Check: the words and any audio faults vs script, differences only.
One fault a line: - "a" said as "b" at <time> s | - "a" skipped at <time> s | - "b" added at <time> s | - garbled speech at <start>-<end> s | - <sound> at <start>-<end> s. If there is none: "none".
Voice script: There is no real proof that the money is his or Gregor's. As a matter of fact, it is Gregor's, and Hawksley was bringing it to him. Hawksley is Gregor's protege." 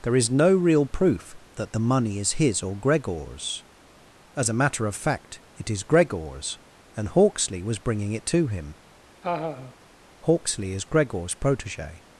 - laugh at 9.2-9.7 s